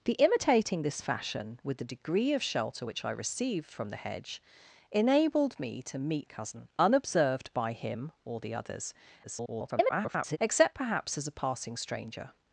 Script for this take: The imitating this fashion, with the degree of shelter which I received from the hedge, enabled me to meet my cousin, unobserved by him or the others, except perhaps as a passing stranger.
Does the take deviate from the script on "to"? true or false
false